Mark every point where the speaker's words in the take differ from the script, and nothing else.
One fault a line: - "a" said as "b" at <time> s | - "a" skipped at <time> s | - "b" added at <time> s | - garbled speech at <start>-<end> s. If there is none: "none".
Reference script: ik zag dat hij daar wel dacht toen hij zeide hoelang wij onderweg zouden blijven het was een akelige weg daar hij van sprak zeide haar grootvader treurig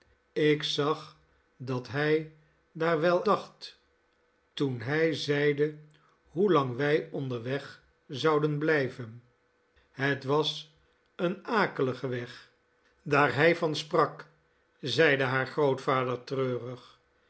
none